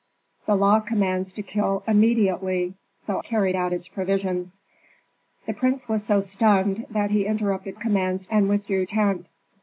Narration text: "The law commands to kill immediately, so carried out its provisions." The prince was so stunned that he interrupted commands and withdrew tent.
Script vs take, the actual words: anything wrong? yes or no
no